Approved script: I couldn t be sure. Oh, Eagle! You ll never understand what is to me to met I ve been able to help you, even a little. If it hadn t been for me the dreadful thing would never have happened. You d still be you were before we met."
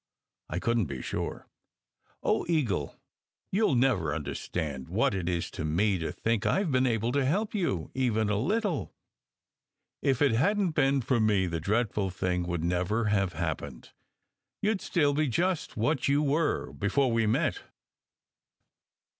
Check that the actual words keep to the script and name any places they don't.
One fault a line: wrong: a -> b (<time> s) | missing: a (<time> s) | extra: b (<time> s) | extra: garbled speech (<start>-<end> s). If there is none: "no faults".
extra: it (5.1 s)
wrong: met -> think (6.1 s)
extra: just what (15.3 s)